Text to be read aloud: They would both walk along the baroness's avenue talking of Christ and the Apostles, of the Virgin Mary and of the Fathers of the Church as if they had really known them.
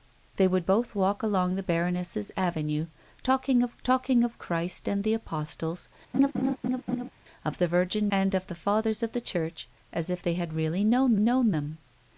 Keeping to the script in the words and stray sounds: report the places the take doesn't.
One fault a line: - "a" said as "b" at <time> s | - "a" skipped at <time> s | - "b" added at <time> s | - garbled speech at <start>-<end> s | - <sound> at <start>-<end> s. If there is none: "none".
- "talking of" added at 3.8 s
- laugh at 6.1-7.1 s
- "Mary" skipped at 8.1 s
- "known" added at 11.2 s